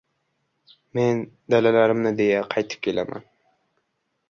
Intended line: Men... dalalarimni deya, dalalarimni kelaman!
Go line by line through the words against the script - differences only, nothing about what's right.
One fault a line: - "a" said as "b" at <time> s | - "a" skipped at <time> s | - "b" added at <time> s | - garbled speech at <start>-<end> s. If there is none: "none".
- "dalalarimni" said as "qaytib" at 2.5 s